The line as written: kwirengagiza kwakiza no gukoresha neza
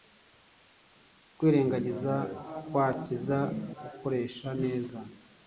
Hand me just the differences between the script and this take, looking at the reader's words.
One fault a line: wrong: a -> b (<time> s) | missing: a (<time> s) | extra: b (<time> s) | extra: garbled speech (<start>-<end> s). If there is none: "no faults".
missing: no (3.4 s)